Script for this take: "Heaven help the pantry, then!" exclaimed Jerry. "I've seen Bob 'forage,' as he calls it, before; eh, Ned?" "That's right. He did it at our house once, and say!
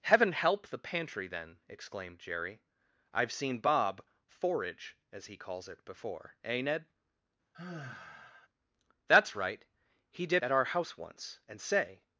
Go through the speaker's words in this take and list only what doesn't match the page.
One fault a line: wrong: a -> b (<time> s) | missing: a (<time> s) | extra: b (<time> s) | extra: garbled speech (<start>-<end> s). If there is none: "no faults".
missing: it (10.4 s)